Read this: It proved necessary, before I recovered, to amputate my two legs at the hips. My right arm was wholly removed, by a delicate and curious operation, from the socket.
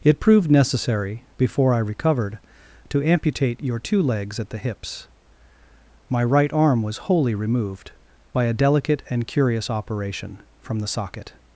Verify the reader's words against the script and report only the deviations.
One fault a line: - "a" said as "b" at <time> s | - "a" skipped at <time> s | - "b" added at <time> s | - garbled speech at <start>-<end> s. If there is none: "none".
- "my" said as "your" at 3.6 s